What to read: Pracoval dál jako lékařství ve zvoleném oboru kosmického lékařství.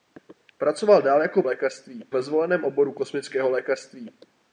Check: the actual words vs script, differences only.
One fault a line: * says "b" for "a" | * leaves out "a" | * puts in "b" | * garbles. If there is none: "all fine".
all fine